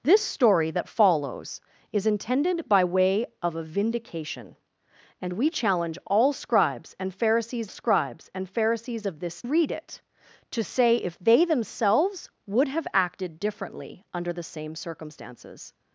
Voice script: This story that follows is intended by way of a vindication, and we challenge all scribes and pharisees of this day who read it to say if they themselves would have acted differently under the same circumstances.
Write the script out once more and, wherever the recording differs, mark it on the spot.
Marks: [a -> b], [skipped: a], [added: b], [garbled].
This story that follows is intended by way of a vindication, and we challenge all scribes and pharisees [added: scribes and pharisees] of this [skipped: day who] read it to say if they themselves would have acted differently under the same circumstances.